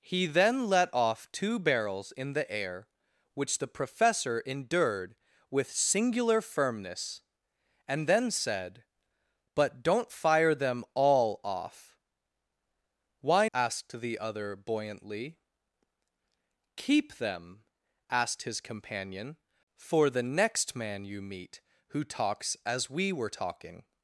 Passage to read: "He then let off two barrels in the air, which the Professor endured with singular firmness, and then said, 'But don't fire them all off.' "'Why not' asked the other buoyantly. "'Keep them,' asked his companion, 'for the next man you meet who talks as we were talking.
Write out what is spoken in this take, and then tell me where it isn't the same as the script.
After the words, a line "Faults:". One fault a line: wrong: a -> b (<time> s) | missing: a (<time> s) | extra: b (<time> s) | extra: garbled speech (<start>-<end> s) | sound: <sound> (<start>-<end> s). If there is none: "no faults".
"He then let off two barrels in the air, which the Professor endured with singular firmness, and then said, 'But don't fire them all off.' "'Why' asked the other buoyantly. "'Keep them,' asked his companion, 'for the next man you meet who talks as we were talking.
Faults:
missing: not (13.5 s)